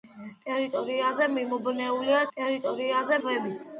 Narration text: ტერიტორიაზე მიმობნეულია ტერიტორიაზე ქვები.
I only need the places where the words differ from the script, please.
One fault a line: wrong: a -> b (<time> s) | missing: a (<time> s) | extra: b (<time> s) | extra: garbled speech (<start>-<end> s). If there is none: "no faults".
no faults